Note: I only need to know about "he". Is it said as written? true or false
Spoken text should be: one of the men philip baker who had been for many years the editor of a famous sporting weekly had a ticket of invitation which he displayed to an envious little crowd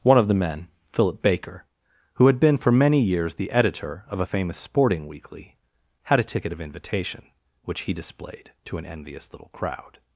true